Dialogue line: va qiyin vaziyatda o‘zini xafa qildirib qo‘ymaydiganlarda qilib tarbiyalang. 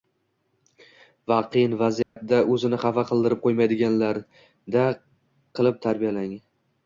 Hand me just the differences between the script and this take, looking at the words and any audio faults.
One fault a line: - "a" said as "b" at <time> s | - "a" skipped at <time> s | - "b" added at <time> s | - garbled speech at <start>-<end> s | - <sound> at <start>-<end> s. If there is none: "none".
- dropout at 2.0-2.2 s